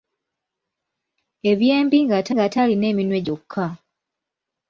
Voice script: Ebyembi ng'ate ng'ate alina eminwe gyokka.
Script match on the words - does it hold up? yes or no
yes